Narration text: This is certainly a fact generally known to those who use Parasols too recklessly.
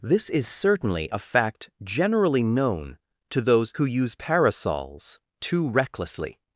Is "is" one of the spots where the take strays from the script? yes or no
no